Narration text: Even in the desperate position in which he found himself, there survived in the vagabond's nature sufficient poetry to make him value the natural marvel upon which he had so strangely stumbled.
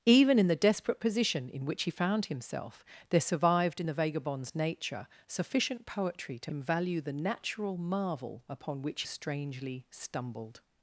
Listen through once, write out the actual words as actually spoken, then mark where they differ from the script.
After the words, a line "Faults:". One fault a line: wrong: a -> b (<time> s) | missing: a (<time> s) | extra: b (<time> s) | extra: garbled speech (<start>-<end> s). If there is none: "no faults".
Even in the desperate position in which he found himself, there survived in the vagabond's nature sufficient poetry to him value the natural marvel upon which strangely stumbled.
Faults:
missing: make (6.5 s)
missing: he had so (9.0 s)